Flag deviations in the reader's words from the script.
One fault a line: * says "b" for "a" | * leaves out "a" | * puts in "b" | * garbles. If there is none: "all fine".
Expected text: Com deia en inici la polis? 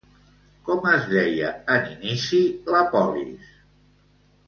* puts in "es"